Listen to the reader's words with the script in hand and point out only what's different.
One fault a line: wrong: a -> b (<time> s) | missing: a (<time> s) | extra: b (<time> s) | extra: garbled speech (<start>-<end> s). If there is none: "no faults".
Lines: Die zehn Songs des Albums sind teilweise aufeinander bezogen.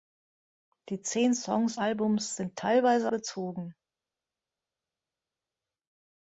missing: des (1.8 s)
missing: aufeinander (3.1 s)